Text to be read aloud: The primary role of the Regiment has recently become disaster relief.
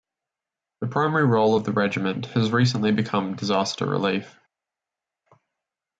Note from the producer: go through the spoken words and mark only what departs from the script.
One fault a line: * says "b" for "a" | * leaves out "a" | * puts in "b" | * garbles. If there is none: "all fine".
all fine